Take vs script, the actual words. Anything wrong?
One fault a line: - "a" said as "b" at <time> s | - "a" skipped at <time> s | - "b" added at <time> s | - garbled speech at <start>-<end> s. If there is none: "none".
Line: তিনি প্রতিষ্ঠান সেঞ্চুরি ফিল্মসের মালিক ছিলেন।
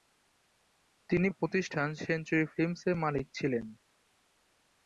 none